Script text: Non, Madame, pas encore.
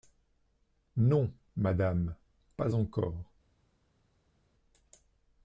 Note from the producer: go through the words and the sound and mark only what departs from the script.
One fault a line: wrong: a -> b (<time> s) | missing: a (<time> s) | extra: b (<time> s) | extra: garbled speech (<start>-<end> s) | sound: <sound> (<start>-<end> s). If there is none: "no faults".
no faults